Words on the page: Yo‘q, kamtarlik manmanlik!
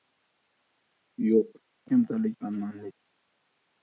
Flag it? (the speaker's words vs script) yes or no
no